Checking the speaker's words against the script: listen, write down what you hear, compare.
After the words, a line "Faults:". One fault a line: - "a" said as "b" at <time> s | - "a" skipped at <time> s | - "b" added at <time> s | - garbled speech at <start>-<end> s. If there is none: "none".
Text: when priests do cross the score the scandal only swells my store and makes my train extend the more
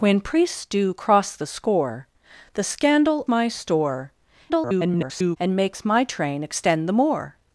when priests do cross the score the scandal my store [garbled] and makes my train extend the more
Faults:
- "only swells" skipped at 3.3 s
- garbled speech at 4.5-5.4 s